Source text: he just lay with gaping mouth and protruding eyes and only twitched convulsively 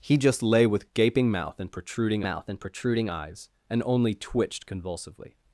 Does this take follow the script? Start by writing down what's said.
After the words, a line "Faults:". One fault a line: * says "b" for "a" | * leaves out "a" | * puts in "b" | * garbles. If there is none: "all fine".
he just lay with gaping mouth and protruding mouth and protruding eyes and only twitched convulsively
Faults:
* puts in "mouth and protruding"